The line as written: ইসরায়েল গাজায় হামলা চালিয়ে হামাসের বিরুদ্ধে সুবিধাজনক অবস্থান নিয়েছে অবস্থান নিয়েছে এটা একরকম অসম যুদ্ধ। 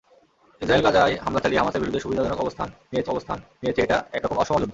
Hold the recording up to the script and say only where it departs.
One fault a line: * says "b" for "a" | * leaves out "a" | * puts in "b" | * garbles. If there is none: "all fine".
all fine